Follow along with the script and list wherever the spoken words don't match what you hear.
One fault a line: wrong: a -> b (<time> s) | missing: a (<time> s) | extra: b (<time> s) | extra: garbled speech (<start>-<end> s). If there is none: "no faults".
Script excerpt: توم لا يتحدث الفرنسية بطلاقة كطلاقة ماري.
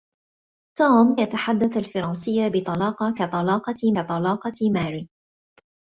missing: لا (1.2 s)
extra: كطلاقة (3.9 s)